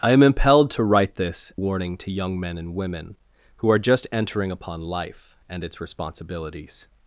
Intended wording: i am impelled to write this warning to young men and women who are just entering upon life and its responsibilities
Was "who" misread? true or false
false